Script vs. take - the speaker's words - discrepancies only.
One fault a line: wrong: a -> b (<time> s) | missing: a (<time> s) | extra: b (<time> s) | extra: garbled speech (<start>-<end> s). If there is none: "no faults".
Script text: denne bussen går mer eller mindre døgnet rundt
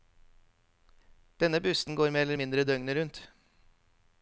no faults